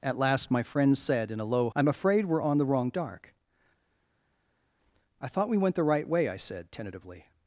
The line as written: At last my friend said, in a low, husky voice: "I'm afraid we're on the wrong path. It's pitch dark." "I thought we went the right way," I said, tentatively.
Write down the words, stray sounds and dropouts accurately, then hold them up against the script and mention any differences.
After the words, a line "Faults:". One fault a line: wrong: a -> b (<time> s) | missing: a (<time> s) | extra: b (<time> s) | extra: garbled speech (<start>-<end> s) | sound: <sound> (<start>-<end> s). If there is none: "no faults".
At last my friend said, in a low: "I'm afraid we're on the wrong dark." "I thought we went the right way," I said, tentatively.
Faults:
missing: husky voice (1.7 s)
missing: path It's pitch (2.9 s)